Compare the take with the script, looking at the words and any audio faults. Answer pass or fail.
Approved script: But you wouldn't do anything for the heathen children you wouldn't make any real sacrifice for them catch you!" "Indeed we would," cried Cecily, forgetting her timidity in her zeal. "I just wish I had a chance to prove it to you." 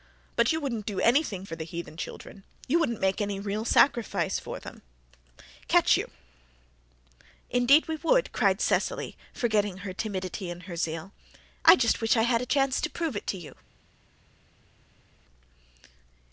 pass